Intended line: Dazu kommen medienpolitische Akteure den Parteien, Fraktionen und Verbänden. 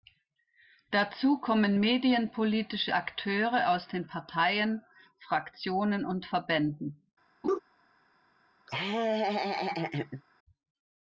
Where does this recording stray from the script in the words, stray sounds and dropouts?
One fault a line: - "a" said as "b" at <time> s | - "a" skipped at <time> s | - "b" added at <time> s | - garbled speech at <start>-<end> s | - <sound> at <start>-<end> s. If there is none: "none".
- "aus" added at 3.7 s
- laugh at 7.4-7.6 s
- laugh at 8.7-10.2 s